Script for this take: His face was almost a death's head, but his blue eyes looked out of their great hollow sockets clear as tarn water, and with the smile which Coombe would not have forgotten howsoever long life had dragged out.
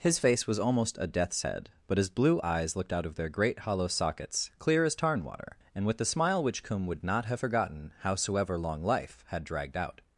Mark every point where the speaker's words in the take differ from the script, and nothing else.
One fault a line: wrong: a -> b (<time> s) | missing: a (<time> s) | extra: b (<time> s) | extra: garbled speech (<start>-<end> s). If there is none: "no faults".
no faults